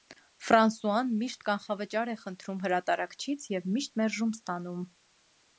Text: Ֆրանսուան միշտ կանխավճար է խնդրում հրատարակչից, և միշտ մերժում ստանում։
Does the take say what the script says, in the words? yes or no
yes